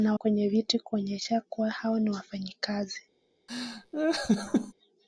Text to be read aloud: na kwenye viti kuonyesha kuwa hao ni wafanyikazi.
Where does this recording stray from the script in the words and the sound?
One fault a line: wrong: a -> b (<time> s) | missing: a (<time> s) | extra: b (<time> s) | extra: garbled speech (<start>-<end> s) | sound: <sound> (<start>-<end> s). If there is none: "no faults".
sound: laugh (3.5-4.7 s)